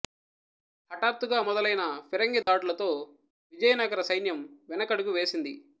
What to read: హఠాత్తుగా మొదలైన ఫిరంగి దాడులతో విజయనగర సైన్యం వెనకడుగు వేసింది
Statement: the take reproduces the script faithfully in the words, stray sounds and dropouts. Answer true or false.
false